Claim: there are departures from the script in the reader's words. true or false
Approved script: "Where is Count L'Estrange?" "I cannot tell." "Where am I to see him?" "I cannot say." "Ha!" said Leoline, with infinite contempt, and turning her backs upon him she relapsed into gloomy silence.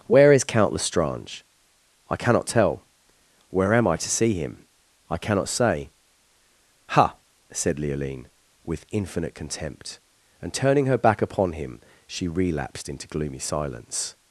true